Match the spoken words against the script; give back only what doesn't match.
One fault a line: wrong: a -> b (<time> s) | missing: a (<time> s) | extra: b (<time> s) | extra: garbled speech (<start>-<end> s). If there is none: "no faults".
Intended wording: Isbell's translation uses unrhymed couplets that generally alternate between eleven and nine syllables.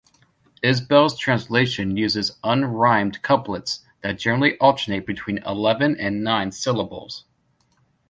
no faults